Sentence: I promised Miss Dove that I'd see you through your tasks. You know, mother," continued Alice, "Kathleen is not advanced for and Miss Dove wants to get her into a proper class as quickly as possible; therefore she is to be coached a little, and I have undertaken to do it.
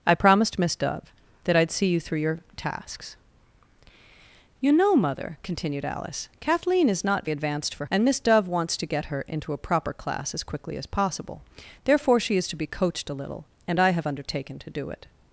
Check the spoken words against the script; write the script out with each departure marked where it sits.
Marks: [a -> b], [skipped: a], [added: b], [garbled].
I promised Miss Dove that I'd see you through your tasks. You know, mother," continued Alice, "Kathleen is not advanced for and Miss Dove wants to get her into a proper class as quickly as possible; therefore she is to be coached a little, and I have undertaken to do it.